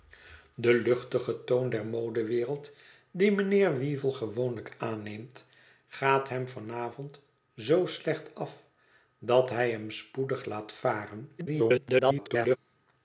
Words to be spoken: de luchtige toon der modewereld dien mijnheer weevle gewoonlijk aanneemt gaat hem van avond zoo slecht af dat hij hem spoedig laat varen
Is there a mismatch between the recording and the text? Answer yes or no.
yes